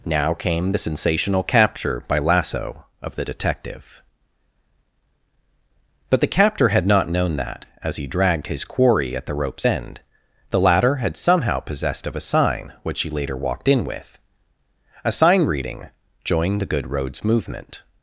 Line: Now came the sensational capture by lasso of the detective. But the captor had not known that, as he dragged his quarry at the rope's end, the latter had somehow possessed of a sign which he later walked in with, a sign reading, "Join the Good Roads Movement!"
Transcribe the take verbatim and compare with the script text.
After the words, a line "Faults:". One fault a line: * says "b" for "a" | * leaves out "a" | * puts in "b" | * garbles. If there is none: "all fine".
Now came the sensational capture by lasso of the detective. But the captor had not known that, as he dragged his quarry at the rope's end, the latter had somehow possessed of a sign which he later walked in with, a sign reading, "Join the Good Roads Movement!"
Faults:
all fine